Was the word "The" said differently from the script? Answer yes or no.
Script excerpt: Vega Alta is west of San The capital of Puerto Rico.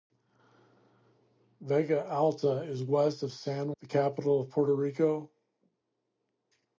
no